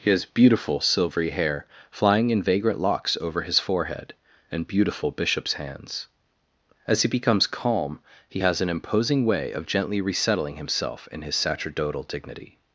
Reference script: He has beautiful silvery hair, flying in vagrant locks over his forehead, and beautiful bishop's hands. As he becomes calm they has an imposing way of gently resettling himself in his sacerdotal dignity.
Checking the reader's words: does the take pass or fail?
fail